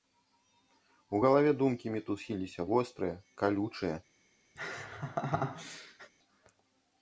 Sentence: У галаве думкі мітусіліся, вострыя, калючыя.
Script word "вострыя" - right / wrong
right